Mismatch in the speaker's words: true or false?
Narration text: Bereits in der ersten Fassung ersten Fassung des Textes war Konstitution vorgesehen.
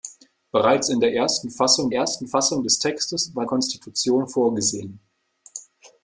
false